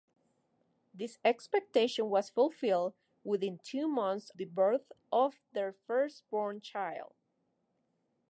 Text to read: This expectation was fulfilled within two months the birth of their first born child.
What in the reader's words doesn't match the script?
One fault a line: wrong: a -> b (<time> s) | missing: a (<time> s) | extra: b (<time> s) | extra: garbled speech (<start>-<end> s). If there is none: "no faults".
no faults